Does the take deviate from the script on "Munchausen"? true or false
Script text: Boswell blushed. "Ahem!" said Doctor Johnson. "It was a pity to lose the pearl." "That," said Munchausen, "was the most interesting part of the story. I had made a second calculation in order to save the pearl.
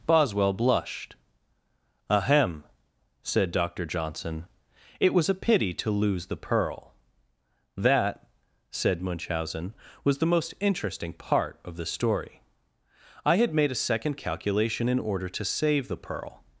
false